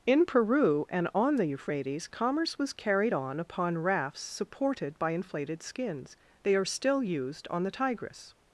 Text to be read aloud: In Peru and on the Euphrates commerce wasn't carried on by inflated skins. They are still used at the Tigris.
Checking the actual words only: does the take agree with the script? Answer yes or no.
no